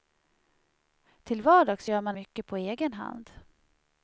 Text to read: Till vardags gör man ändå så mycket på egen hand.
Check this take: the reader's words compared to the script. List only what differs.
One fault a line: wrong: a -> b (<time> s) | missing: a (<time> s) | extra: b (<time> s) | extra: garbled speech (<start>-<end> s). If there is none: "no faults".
missing: ändå så (2.2 s)